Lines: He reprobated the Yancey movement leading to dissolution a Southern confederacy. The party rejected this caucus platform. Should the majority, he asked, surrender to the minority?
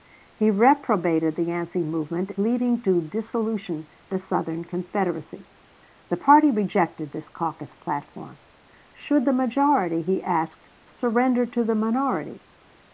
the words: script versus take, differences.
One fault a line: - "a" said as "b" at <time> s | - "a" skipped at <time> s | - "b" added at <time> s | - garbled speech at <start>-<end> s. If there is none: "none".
none